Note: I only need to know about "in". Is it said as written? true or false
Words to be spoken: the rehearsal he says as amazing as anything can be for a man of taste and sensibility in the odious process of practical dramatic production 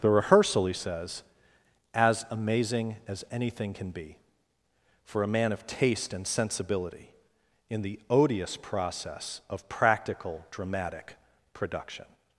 true